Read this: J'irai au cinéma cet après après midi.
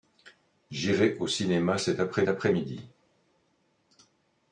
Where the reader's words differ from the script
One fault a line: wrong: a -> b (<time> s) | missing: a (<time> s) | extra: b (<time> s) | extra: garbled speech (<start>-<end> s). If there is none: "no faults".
no faults